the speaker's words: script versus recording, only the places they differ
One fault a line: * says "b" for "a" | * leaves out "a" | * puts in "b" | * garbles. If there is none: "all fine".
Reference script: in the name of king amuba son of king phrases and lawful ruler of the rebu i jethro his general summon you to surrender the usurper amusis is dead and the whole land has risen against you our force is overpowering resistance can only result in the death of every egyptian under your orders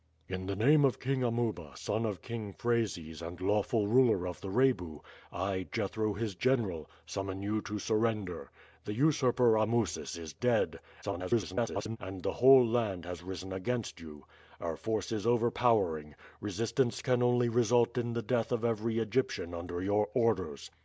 * garbles